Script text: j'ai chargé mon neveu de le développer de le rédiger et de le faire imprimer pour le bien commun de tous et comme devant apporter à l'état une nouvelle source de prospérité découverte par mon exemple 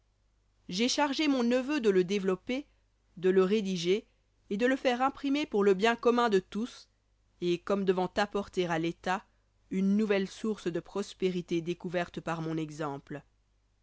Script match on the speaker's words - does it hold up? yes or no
yes